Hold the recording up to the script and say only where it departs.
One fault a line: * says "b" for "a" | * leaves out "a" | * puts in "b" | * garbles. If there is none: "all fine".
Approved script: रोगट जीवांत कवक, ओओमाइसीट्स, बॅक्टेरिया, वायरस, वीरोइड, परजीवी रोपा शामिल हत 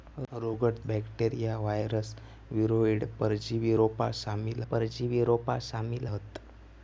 * says "बॅक्टेरिया वायरस वीरोइड परजीवी रोपा शामिल" for "जीवांत कवक ओओमाइसीट्स बॅक्टेरिया वायरस वीरोइड"